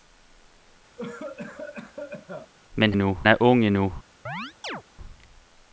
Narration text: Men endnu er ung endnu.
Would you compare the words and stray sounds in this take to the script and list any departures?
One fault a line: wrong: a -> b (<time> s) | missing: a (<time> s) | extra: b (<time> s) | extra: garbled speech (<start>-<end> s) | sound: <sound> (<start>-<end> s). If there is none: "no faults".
sound: cough (1.0-2.5 s)
sound: chirp (4.3-4.8 s)